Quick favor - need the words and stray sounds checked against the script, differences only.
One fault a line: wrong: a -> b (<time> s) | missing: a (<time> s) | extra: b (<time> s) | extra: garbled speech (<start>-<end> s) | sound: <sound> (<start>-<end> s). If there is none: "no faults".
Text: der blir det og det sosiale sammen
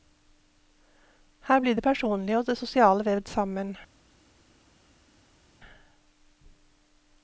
wrong: der -> her (1.4 s)
extra: personlige (1.8 s)
extra: vevd (3.0 s)